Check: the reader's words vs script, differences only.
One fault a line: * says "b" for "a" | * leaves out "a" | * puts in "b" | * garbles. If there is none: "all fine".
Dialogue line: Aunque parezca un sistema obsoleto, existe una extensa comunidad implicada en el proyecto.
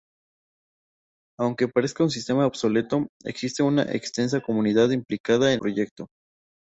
* leaves out "el"